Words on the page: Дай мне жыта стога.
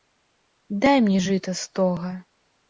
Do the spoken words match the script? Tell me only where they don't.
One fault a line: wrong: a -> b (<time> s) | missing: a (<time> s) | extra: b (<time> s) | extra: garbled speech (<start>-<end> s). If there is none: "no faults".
no faults